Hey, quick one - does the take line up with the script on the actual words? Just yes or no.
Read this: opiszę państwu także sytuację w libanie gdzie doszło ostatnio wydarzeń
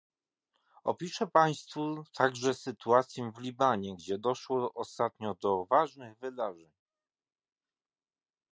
no